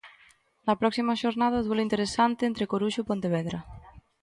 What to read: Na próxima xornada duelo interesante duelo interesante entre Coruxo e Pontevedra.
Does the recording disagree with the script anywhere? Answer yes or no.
yes